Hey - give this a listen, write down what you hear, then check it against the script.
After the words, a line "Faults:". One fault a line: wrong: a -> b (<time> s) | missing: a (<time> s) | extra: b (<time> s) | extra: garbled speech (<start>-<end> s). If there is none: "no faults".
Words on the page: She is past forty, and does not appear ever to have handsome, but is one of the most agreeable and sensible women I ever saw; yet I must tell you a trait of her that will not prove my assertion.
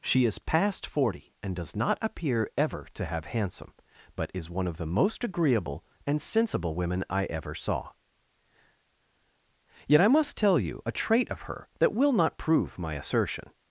She is past forty, and does not appear ever to have handsome, but is one of the most agreeable and sensible women I ever saw; yet I must tell you a trait of her that will not prove my assertion.
Faults:
no faults